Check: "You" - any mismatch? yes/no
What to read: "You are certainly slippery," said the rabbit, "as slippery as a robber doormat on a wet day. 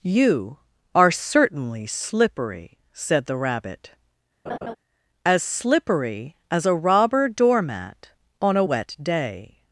no